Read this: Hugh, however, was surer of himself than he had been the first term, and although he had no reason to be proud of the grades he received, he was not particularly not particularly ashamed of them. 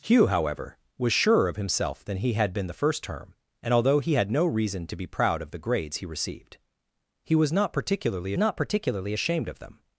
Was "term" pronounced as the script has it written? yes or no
yes